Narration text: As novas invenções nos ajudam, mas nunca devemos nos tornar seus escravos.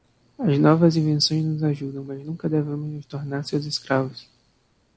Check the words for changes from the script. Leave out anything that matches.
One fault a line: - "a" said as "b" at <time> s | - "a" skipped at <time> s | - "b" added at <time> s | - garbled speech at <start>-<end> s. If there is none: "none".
none